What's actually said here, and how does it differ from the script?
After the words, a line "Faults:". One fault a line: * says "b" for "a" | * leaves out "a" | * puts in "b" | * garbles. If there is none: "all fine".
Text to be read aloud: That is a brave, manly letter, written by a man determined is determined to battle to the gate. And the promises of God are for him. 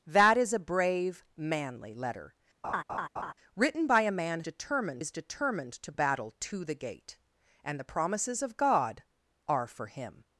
That is a brave, manly letter, written by a man determined is determined to battle to the gate. And the promises of God are for him.
Faults:
all fine